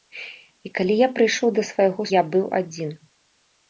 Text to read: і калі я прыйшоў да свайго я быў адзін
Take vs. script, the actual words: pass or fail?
pass